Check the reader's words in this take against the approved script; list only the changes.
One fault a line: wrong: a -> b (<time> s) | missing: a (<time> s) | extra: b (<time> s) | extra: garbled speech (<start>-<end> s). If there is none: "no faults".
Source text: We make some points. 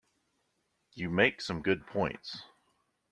wrong: We -> You (0.9 s)
extra: good (1.6 s)